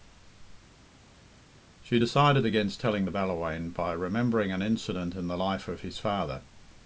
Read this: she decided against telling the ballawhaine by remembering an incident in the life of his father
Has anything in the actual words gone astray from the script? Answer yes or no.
no